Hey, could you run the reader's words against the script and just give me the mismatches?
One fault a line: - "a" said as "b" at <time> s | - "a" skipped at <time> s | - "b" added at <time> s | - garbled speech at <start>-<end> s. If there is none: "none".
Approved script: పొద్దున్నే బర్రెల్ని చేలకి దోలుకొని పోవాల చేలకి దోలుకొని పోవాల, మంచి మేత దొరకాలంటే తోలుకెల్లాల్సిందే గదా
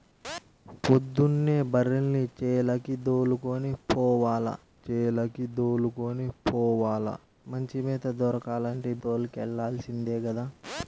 none